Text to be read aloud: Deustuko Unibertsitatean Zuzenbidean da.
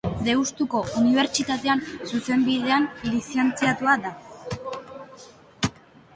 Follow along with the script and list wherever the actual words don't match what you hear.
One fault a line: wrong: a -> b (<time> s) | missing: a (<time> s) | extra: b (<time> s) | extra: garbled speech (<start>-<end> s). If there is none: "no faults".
extra: lizentziatua (3.1 s)